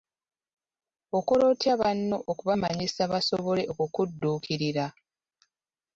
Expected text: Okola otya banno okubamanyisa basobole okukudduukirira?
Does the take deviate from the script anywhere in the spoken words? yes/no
no